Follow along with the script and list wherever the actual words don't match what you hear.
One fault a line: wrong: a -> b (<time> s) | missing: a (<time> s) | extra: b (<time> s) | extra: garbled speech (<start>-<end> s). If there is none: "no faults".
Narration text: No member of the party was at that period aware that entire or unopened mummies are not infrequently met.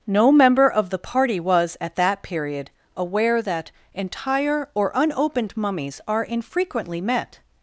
missing: not (6.2 s)